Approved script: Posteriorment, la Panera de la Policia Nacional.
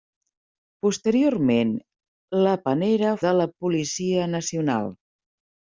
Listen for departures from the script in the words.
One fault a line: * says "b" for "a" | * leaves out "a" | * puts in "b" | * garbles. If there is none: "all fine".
all fine